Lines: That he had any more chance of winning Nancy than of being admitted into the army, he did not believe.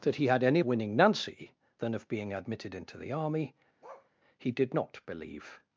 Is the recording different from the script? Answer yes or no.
yes